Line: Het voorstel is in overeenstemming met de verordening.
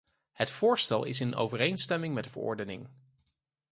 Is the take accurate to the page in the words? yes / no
yes